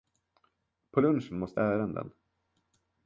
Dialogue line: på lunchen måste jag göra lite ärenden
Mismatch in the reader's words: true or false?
true